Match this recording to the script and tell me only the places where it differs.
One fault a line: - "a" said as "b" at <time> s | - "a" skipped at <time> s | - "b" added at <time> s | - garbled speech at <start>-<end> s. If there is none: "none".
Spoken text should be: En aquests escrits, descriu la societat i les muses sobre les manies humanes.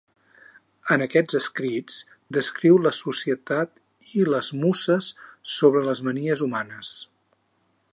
none